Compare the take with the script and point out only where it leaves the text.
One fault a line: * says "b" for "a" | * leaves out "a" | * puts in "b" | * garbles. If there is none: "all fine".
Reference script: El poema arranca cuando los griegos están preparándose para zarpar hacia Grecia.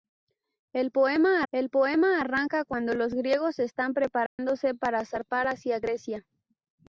* puts in "el poema"